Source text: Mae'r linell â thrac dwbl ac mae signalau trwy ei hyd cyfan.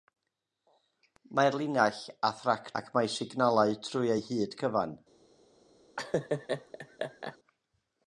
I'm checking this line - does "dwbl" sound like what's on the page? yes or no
no